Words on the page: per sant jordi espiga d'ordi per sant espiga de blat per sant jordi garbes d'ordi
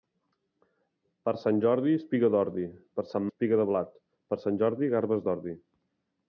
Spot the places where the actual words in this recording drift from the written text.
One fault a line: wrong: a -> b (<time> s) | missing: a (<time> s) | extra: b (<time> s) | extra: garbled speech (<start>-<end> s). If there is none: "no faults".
no faults